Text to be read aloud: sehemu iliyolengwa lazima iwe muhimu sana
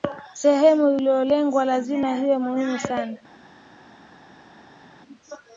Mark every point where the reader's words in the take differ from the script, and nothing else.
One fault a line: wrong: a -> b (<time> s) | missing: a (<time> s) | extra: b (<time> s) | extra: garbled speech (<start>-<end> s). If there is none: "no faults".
no faults